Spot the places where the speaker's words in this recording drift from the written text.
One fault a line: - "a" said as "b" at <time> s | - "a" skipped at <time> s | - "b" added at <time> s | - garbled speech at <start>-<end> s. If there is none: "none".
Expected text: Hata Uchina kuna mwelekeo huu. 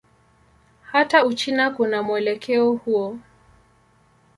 none